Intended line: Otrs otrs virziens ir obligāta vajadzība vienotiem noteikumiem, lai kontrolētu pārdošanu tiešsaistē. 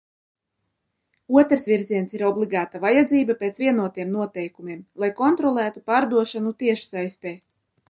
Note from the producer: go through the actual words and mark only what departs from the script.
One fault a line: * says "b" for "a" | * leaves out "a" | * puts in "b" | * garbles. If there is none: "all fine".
* leaves out "otrs"
* puts in "pēc"